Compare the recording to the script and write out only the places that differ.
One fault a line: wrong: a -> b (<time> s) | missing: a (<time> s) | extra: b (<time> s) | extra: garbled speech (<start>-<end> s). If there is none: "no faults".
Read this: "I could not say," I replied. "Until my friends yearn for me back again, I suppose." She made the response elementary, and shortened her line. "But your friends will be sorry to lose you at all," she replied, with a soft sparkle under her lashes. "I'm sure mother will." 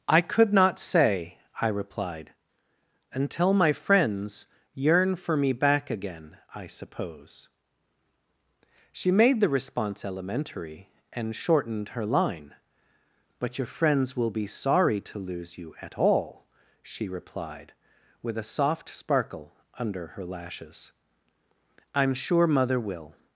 no faults